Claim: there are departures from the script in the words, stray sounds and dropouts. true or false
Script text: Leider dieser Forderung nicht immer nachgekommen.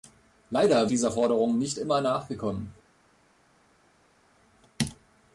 false